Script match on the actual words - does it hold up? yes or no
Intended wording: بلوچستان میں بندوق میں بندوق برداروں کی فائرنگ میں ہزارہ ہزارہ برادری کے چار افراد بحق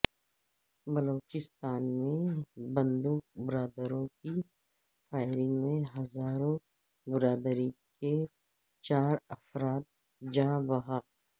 no